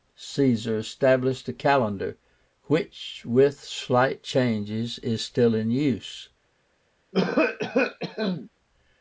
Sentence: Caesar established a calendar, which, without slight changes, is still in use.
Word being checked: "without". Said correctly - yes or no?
no